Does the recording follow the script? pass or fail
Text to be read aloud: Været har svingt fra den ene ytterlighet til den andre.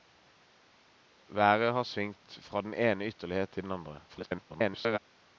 fail